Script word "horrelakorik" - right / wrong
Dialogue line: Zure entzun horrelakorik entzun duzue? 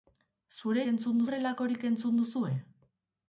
right